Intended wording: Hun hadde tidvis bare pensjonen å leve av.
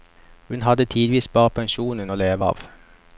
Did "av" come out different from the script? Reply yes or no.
no